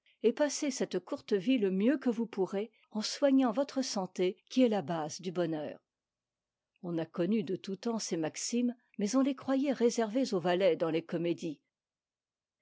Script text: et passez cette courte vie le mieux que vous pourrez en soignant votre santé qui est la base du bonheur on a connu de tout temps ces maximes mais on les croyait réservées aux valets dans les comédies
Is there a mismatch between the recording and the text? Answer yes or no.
no